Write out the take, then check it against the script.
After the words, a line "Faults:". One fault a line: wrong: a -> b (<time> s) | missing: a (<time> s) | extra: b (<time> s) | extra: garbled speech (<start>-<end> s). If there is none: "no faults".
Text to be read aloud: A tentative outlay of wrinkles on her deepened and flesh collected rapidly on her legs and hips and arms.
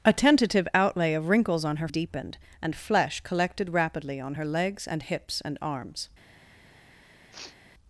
A tentative outlay of wrinkles on her deepened and flesh collected rapidly on her legs and hips and arms.
Faults:
no faults